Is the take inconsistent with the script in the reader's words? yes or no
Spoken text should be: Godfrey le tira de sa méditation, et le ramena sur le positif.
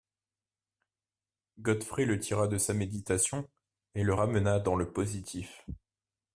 yes